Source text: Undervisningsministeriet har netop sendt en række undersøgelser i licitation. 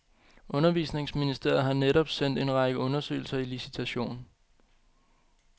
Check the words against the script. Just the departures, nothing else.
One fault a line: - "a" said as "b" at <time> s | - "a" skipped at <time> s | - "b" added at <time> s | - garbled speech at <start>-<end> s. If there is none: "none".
none